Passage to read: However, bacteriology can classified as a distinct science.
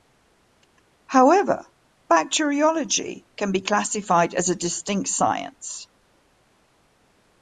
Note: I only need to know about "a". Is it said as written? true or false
true